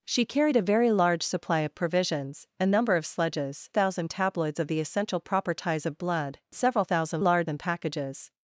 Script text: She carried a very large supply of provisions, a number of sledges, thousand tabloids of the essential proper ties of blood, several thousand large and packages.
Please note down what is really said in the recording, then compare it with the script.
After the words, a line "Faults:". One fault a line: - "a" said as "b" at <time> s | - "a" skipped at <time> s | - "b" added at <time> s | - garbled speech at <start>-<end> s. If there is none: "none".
She carried a very large supply of provisions, a number of sledges, thousand tabloids of the essential proper ties of blood, several thousand large and packages.
Faults:
none